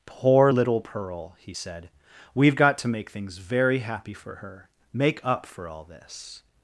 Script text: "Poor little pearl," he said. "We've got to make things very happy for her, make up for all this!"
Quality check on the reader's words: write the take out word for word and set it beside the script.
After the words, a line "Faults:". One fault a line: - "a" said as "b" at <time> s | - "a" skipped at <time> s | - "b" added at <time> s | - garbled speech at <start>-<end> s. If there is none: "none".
"Poor little pearl," he said. "We've got to make things very happy for her, make up for all this!"
Faults:
none